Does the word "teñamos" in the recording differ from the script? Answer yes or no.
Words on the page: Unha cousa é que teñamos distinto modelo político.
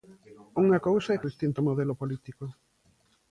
yes